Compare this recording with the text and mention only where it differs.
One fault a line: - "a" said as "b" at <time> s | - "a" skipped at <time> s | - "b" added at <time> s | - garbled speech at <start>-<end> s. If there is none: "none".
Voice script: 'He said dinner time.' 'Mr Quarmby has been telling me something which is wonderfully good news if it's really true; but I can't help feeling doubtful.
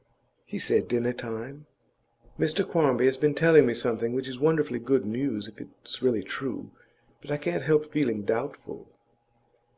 none